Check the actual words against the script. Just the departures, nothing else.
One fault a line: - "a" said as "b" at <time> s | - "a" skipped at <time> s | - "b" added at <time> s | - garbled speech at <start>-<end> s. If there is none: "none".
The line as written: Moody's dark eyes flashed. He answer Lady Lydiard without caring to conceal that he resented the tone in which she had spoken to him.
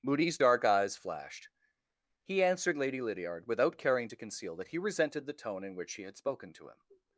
- "answer" said as "answered" at 2.4 s